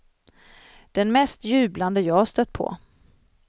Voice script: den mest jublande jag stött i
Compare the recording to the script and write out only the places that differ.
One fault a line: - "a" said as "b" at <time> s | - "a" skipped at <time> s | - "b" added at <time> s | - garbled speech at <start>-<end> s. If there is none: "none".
- "i" said as "på" at 2.5 s